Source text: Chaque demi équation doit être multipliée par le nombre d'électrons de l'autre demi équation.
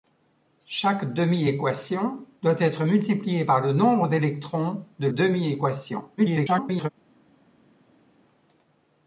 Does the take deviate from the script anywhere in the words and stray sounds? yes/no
yes